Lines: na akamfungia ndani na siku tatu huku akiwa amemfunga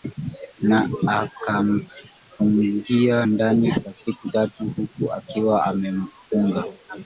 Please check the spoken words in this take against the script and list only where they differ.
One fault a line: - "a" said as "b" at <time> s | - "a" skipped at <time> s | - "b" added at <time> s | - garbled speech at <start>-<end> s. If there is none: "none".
- "na" said as "kwa" at 3.8 s